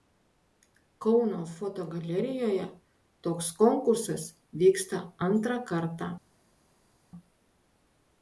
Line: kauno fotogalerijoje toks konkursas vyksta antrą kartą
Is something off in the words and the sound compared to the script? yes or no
no